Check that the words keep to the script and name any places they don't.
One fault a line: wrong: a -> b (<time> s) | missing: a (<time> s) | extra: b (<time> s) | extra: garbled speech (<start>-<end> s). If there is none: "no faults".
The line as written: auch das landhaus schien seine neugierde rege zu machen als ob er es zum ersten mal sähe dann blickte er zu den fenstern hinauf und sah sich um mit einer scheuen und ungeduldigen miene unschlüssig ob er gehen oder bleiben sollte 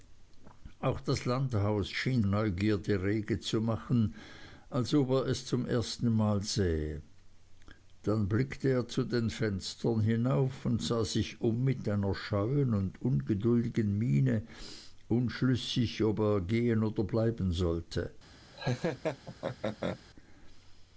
missing: seine (2.2 s)